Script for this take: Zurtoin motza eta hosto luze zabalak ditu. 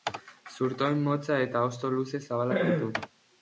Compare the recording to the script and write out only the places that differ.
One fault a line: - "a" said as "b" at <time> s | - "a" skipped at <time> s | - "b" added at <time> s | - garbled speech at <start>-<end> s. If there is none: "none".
none